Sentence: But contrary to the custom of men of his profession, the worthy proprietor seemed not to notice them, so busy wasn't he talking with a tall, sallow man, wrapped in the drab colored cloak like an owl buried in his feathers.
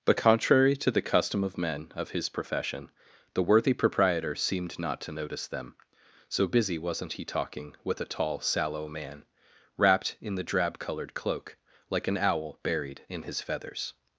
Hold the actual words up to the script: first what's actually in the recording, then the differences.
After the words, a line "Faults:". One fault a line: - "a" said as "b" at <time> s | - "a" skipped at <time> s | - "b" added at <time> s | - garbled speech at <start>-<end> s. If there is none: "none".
But contrary to the custom of men of his profession, the worthy proprietor seemed not to notice them, so busy wasn't he talking with a tall, sallow man, wrapped in the drab colored cloak like an owl buried in his feathers.
Faults:
none